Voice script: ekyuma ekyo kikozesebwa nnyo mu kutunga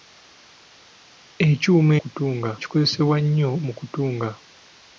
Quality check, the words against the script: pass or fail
fail